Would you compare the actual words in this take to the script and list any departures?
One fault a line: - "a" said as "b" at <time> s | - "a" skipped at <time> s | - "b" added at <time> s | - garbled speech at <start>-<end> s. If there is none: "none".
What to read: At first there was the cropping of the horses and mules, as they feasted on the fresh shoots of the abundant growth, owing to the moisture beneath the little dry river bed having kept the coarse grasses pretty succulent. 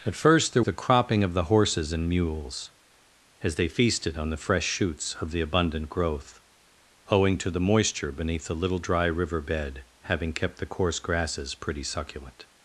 - "was" skipped at 0.6 s